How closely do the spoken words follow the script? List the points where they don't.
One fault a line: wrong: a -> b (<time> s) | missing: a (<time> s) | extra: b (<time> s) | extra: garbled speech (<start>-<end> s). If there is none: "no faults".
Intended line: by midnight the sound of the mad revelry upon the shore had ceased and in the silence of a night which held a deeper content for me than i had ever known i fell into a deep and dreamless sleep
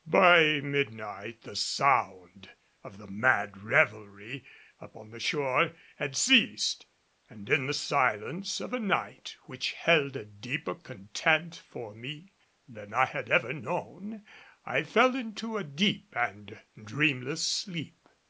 no faults